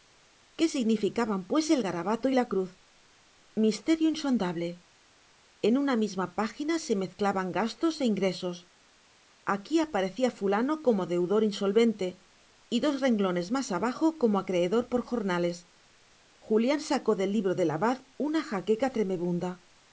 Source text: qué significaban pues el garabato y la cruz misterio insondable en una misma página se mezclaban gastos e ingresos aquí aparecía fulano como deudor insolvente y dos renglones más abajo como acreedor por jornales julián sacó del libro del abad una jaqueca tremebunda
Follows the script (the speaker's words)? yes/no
yes